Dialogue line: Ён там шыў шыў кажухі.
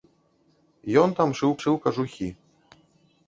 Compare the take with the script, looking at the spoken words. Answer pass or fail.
pass